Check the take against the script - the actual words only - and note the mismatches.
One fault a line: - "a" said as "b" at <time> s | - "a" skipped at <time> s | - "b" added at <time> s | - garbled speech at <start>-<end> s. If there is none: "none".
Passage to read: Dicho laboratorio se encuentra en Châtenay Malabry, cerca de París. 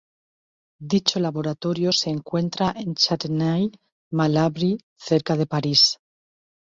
none